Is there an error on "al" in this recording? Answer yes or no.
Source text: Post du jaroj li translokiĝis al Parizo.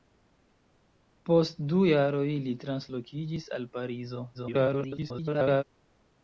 no